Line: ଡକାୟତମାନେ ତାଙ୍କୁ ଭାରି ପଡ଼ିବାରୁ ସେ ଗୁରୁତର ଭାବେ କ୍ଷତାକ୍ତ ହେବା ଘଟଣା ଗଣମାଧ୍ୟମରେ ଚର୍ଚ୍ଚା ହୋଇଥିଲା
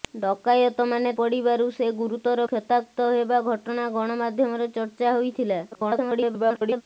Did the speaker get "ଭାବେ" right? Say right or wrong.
wrong